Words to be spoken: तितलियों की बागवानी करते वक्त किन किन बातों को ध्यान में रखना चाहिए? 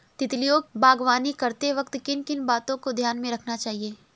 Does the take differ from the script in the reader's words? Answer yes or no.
yes